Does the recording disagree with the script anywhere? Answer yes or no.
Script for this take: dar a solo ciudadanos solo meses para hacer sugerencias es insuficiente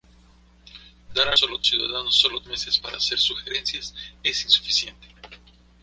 no